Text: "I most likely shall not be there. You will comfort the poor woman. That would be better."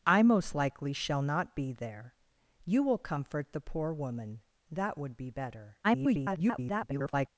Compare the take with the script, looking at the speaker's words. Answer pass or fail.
fail